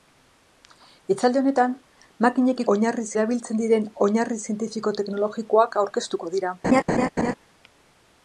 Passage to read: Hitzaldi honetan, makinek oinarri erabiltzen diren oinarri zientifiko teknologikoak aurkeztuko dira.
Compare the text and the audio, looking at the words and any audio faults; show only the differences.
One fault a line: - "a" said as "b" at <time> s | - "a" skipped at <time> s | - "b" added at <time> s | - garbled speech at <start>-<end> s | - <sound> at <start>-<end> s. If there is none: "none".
- laugh at 6.6-7.3 s